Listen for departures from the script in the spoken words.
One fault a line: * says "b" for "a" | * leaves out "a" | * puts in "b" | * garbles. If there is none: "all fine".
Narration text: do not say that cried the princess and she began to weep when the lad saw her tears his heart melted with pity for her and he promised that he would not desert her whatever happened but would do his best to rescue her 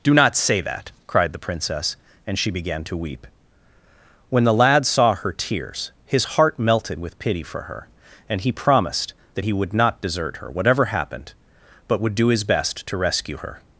all fine